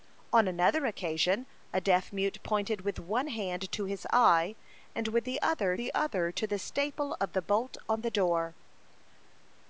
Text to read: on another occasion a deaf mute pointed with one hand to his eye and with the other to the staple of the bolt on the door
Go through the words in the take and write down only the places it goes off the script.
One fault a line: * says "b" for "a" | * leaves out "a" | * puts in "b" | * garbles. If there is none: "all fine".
* puts in "the other"